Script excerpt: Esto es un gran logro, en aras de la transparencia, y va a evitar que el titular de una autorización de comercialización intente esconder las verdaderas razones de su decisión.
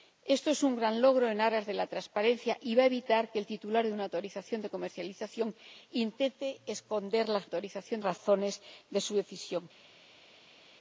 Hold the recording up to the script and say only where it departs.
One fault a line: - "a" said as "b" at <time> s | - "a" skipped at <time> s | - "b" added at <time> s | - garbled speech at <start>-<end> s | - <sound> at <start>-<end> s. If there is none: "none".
- "verdaderas" said as "autorización" at 7.4 s